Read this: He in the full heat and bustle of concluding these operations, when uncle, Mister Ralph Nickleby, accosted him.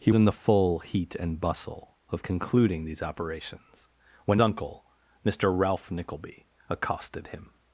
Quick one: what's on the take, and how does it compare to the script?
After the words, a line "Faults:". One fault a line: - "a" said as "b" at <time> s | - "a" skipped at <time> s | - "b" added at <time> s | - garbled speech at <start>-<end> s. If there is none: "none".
He in the full heat and bustle of concluding these operations, when uncle, Mister Ralph Nickleby, accosted him.
Faults:
none